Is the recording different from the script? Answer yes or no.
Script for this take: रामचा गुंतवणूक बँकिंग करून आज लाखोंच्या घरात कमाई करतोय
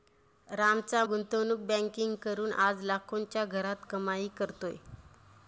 no